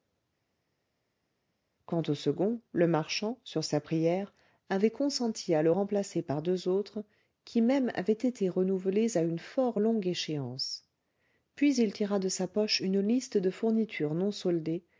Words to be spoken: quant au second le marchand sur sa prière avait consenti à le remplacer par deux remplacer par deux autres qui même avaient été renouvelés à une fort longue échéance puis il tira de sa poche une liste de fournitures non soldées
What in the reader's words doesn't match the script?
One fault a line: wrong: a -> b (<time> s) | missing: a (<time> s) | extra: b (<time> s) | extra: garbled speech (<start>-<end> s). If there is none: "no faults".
missing: remplacer par deux (6.7 s)